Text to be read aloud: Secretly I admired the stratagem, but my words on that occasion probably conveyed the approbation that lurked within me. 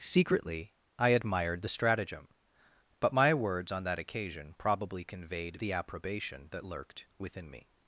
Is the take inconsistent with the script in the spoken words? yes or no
no